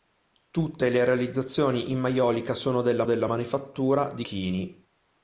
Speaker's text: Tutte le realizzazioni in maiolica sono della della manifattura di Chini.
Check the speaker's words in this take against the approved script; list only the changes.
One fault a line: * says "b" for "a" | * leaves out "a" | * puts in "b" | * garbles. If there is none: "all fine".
all fine